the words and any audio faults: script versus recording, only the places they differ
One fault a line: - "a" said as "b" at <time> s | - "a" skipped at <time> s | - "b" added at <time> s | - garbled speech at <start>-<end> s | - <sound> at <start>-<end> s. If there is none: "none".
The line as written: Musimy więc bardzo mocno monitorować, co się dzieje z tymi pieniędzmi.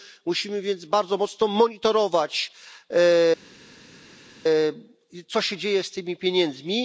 none